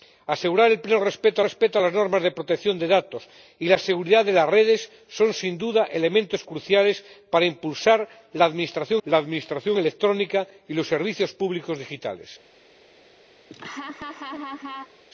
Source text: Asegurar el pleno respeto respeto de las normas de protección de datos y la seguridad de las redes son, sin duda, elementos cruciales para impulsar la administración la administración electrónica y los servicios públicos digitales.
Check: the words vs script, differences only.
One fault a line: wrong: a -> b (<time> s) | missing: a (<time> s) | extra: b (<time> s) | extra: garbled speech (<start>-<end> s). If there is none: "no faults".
no faults